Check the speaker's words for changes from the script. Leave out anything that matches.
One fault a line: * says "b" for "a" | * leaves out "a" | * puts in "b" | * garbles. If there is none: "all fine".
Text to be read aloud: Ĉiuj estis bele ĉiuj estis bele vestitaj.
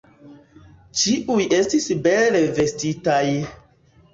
* leaves out "ĉiuj estis bele"